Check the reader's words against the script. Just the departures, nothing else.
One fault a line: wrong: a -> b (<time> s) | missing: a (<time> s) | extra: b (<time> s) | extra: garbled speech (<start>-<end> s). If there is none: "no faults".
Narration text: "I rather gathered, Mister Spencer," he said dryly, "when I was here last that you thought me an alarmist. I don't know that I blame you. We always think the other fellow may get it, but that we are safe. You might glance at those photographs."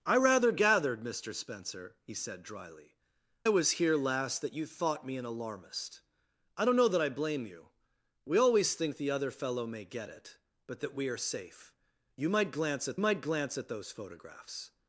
missing: when I (3.0 s)
extra: might glance at (13.0 s)